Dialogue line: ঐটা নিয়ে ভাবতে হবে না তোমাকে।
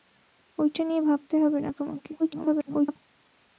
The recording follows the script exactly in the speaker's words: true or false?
false